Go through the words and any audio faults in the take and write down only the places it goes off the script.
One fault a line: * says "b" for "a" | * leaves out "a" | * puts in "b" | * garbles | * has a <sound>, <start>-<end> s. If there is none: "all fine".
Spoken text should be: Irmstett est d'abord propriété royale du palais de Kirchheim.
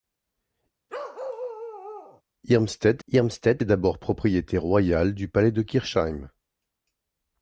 * has a bark, 0.9-2.2 s
* puts in "irmstett"